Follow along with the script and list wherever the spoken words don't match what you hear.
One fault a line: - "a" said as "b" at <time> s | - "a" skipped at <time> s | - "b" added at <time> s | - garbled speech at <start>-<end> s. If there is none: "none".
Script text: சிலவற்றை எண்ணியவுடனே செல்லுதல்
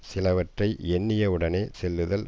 none